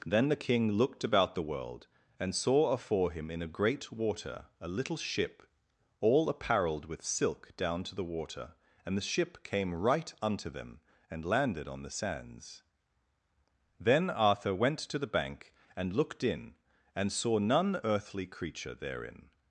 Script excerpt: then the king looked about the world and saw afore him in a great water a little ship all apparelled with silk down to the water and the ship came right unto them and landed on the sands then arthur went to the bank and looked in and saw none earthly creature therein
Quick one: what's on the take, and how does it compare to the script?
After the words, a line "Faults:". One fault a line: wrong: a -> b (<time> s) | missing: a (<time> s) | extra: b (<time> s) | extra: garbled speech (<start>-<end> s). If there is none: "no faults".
then the king looked about the world and saw afore him in a great water a little ship all apparelled with silk down to the water and the ship came right unto them and landed on the sands then arthur went to the bank and looked in and saw none earthly creature therein
Faults:
no faults